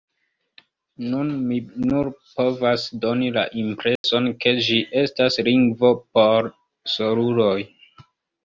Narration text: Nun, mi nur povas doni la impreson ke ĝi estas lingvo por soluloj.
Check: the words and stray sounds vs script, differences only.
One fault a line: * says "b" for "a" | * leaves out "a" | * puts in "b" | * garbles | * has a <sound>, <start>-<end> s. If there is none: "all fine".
* has a dropout, 4.0-4.0 s